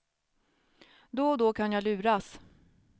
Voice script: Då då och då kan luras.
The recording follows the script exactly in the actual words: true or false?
false